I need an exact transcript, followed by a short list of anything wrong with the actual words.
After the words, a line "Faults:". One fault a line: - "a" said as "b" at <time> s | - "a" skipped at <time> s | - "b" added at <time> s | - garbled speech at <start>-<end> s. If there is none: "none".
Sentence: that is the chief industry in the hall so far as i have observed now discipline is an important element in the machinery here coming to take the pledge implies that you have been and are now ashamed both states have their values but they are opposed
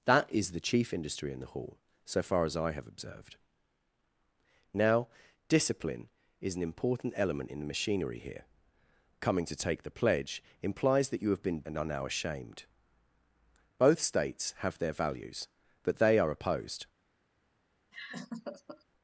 that is the chief industry in the hall so far as i have observed now discipline is an important element in the machinery here coming to take the pledge implies that you have been and are now ashamed both states have their values but they are opposed
Faults:
none